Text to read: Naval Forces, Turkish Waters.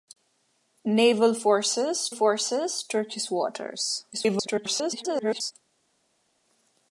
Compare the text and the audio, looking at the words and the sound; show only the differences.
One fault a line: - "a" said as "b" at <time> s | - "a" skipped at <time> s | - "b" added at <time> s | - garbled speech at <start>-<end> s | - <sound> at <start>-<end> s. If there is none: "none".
- "Forces" added at 2.1 s
- garbled speech at 4.1-5.5 s